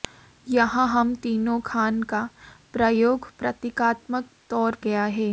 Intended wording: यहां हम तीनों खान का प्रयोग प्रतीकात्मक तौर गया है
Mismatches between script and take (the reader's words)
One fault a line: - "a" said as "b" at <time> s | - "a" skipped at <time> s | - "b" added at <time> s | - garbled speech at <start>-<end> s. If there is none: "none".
none